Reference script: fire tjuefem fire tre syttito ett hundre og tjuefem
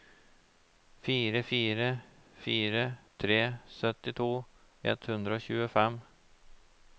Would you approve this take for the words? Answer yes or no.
no